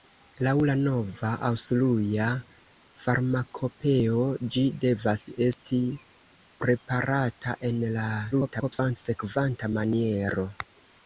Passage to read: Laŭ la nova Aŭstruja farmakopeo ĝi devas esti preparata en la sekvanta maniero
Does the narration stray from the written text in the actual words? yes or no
yes